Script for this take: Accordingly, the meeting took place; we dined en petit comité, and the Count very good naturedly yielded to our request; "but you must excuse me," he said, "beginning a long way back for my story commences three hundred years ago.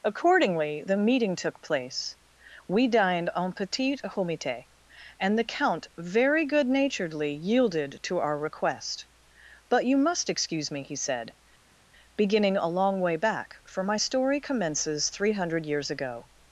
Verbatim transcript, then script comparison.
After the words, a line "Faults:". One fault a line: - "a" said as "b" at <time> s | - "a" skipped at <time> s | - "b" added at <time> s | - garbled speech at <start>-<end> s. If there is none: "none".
Accordingly, the meeting took place; we dined en petit comité, and the Count very good naturedly yielded to our request; "but you must excuse me," he said, "beginning a long way back for my story commences three hundred years ago.
Faults:
none